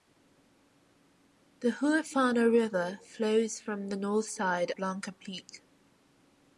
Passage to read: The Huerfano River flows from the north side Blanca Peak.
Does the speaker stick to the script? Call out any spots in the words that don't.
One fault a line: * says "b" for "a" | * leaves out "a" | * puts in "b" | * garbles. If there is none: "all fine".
all fine